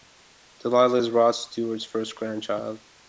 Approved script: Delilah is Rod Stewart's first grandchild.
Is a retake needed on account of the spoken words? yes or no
no